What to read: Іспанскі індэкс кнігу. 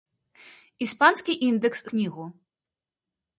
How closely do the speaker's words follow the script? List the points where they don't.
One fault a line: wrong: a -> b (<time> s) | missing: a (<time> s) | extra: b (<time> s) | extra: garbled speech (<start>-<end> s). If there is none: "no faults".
no faults